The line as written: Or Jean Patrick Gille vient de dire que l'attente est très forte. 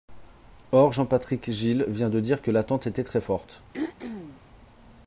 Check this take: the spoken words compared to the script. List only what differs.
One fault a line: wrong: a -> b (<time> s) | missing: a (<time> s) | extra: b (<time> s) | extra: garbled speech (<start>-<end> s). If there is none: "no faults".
wrong: est -> était (2.9 s)